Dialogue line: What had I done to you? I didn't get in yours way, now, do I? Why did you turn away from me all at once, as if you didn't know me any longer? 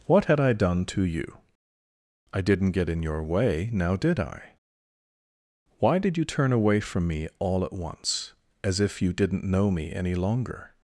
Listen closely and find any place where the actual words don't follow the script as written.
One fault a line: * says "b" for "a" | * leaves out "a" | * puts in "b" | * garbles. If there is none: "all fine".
* says "your" for "yours"
* says "did" for "do"